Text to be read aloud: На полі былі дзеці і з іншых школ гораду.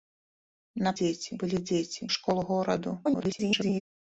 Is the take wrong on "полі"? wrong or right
wrong